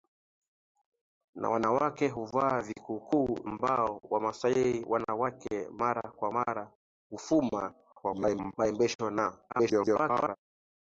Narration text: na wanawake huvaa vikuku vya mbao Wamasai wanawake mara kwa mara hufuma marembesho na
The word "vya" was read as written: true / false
false